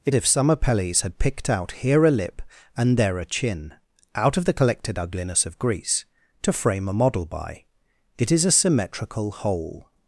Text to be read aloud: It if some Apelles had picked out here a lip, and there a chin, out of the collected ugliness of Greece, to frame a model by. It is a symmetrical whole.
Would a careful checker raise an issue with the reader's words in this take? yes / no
no